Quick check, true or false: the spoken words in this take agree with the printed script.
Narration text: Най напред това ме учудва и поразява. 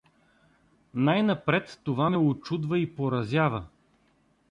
true